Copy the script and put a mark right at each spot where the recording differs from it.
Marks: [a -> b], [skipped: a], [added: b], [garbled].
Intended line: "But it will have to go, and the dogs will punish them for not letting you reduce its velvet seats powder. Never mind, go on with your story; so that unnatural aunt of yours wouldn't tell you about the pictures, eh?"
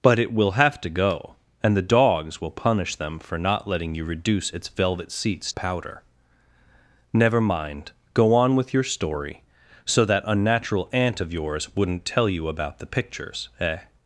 "But it will have to go, and the dogs will punish them for not letting you reduce its velvet seats powder. Never mind, go on with your story; so that unnatural aunt of yours wouldn't tell you about the pictures, eh?"